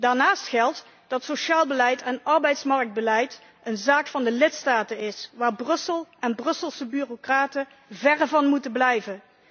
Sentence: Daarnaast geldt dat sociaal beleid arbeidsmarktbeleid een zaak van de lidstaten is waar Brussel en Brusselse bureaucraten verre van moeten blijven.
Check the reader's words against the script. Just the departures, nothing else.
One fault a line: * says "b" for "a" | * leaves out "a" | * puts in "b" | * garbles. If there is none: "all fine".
* puts in "en"